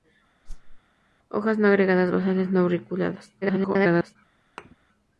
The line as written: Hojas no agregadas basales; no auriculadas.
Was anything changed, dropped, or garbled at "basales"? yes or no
no